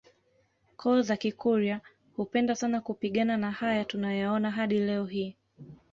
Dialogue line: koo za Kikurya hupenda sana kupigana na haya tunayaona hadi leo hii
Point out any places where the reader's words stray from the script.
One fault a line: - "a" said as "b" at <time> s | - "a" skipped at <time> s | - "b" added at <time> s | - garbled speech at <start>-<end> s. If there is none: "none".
none